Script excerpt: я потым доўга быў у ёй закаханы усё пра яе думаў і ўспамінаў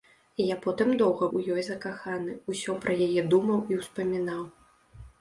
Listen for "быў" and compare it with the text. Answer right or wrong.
wrong